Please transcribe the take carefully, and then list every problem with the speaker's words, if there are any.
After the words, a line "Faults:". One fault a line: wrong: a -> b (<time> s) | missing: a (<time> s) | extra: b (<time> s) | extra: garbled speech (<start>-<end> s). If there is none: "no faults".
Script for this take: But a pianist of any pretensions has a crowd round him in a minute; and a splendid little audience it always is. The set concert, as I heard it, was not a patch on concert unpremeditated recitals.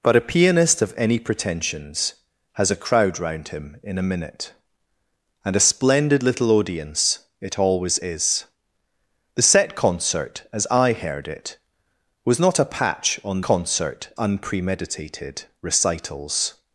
But a pianist of any pretensions has a crowd round him in a minute; and a splendid little audience it always is. The set concert, as I heard it, was not a patch on concert unpremeditated recitals.
Faults:
no faults